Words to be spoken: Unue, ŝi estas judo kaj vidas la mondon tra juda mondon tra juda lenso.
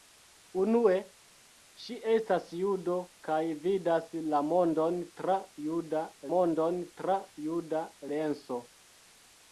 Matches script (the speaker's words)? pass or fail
pass